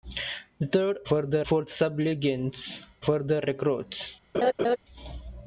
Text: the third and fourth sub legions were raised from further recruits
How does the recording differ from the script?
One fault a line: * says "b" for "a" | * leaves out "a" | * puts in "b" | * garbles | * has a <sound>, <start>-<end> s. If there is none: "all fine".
* says "further" for "and"
* leaves out "were raised from"
* has a laugh, 4.3-4.8 s